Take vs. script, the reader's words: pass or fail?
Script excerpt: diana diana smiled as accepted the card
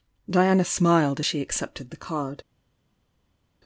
fail